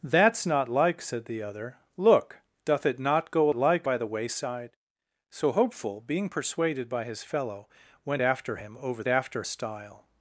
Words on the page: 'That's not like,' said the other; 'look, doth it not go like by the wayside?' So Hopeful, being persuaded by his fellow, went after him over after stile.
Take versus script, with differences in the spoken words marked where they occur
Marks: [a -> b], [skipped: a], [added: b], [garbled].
'That's not like,' said the other; 'look, doth it not go like by the wayside?' So Hopeful, being persuaded by his fellow, went after him over after stile.